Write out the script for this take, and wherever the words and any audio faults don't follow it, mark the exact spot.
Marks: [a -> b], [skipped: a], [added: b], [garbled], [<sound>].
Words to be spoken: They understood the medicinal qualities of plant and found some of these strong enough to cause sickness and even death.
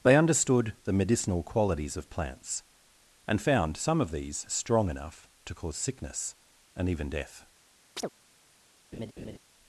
They understood the medicinal qualities of [plant -> plants] and found some of these strong enough to cause sickness and even death. [chirp] [laugh]